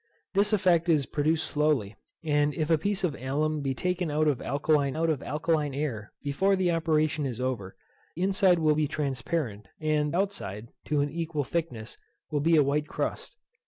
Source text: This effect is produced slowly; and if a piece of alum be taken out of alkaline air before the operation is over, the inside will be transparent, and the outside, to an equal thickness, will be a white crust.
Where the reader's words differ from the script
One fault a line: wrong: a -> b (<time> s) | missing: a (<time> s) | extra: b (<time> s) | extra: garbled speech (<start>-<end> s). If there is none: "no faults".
extra: out of alkaline (4.9 s)
missing: the (7.7 s)
missing: the (10.1 s)